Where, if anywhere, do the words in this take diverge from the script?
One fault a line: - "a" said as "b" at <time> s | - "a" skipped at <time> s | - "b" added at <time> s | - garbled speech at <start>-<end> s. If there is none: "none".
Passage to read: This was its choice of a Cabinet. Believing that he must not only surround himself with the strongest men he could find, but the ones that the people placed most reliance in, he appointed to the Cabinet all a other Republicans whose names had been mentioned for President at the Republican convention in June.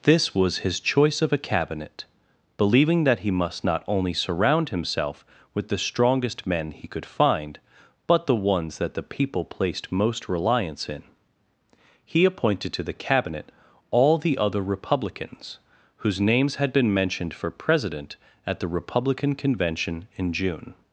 - "its" said as "his" at 0.7 s
- "a" said as "the" at 14.2 s